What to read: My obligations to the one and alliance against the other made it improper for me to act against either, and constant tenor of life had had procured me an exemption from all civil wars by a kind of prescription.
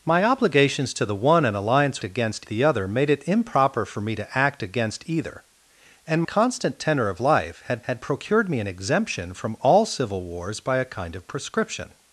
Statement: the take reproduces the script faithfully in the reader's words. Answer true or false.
true